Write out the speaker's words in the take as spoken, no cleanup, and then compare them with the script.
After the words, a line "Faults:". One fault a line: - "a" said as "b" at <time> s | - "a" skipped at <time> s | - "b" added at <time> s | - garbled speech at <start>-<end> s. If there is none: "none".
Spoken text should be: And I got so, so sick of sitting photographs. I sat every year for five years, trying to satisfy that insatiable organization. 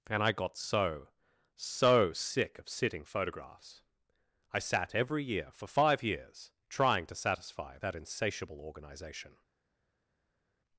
And I got so, so sick of sitting photographs. I sat every year for five years, trying to satisfy that insatiable organization.
Faults:
none